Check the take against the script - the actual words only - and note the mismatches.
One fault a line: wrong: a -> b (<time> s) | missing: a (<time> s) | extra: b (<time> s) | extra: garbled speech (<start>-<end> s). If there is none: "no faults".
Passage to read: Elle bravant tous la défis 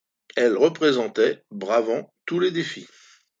extra: représentait (0.5 s)
wrong: la -> les (2.4 s)